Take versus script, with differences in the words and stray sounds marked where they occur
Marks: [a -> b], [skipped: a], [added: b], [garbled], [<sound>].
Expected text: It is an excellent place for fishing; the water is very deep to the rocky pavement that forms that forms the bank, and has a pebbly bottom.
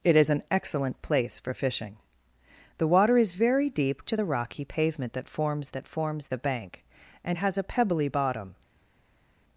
It is an excellent place for fishing; the water is very deep to the rocky pavement that forms that forms the bank, and has a pebbly bottom.